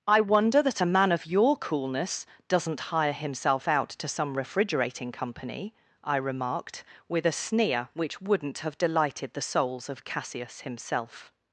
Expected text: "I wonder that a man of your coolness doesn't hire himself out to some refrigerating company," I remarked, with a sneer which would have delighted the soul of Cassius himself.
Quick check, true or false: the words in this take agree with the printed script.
false